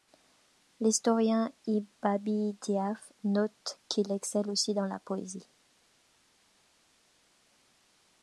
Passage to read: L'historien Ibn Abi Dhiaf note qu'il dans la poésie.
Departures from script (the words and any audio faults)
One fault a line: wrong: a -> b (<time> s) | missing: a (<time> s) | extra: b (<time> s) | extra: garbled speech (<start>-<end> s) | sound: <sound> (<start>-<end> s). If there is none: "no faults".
extra: excelle aussi (4.1 s)